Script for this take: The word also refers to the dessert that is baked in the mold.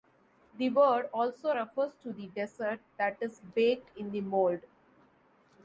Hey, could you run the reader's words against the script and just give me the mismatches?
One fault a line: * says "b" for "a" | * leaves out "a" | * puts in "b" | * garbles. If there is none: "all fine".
all fine